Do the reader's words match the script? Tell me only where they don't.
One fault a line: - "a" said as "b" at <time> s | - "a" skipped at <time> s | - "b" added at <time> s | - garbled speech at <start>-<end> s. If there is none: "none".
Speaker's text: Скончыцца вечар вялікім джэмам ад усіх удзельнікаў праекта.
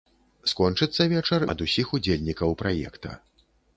- "вялікім джэмам" skipped at 1.4 s